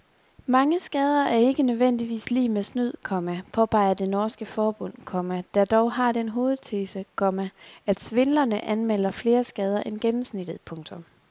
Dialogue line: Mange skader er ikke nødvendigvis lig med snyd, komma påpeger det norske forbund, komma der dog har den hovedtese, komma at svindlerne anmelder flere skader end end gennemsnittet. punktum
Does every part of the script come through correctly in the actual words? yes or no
no